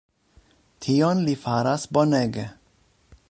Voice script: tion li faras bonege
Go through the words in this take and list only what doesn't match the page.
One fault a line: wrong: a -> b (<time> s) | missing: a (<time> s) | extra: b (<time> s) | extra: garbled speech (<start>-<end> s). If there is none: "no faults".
no faults